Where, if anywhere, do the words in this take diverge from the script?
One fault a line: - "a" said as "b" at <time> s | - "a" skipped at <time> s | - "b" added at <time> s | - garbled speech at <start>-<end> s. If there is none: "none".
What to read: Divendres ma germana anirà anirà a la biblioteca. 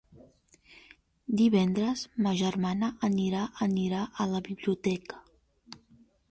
none